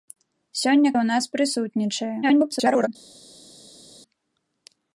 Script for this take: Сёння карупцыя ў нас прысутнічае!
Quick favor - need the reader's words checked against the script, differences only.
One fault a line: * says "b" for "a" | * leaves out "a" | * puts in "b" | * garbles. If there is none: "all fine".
* leaves out "карупцыя"
* garbles